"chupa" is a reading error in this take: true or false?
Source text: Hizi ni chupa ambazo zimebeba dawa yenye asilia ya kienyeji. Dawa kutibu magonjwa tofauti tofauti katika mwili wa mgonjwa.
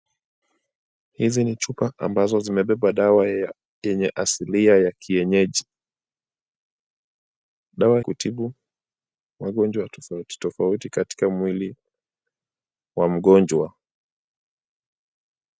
false